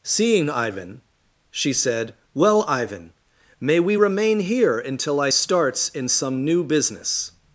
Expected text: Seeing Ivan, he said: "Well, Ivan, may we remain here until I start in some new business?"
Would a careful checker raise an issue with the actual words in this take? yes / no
yes